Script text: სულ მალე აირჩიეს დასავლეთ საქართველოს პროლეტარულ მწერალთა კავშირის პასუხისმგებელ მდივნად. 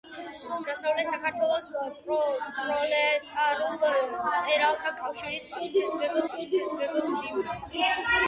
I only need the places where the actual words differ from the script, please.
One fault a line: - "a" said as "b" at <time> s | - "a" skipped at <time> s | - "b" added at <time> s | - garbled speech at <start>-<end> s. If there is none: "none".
- "მალე აირჩიეს" skipped at 0.6 s
- "პასუხისმგებელ" added at 6.3 s